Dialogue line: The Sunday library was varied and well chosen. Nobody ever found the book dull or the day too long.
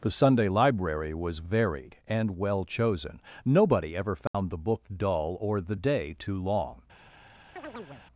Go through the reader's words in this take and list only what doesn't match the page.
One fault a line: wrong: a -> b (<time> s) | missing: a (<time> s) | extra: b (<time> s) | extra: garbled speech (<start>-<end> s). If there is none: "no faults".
no faults